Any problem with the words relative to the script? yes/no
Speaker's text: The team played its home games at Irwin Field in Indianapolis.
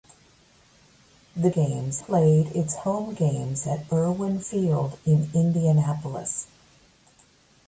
yes